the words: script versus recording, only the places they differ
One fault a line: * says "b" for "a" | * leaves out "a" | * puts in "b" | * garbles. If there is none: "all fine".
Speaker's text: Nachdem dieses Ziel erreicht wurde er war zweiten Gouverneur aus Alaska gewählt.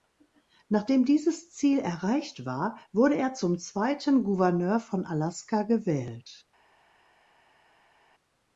* puts in "war"
* says "zum" for "war"
* says "von" for "aus"